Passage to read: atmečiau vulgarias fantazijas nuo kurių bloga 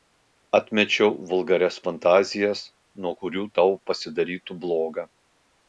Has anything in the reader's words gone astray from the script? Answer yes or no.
yes